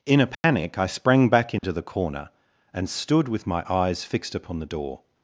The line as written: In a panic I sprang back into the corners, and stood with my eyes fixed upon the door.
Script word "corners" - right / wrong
wrong